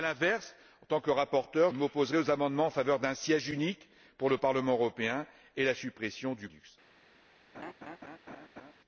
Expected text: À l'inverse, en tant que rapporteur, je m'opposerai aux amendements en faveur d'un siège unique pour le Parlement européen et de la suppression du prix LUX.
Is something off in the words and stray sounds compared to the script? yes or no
yes